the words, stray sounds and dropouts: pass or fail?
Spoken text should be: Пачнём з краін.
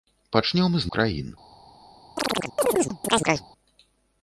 fail